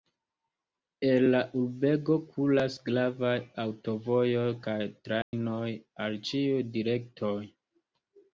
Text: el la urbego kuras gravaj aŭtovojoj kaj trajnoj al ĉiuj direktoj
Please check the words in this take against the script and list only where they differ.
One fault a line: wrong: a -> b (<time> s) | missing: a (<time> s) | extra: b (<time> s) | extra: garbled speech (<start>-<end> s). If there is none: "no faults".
no faults